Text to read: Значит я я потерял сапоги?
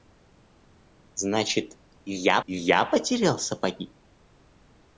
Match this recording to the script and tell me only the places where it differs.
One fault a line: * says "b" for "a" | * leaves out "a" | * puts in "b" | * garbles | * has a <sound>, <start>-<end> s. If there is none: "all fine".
all fine